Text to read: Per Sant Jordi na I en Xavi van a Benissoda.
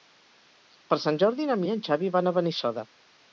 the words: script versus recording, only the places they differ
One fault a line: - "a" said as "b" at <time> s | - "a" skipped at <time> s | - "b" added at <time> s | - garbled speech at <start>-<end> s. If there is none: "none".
none